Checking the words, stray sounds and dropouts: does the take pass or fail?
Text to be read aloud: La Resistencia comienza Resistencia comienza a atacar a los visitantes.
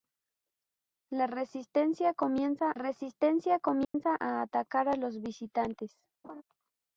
fail